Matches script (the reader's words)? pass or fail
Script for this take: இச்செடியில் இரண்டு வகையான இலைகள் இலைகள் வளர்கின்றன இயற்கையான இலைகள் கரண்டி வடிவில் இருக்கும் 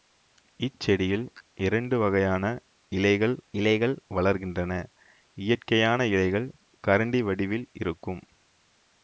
pass